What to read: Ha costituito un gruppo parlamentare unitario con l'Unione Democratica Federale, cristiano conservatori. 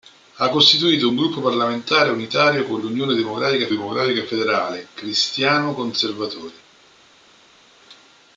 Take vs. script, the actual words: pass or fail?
fail